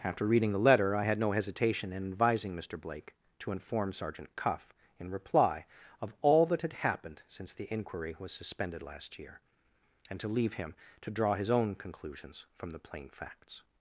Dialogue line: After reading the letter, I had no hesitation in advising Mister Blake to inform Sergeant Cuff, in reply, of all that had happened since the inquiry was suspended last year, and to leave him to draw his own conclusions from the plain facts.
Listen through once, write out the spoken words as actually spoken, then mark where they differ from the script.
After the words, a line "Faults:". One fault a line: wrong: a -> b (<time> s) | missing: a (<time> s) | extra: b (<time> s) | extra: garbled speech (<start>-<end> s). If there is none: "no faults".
After reading the letter, I had no hesitation in advising Mister Blake to inform Sergeant Cuff, in reply, of all that had happened since the inquiry was suspended last year, and to leave him to draw his own conclusions from the plain facts.
Faults:
no faults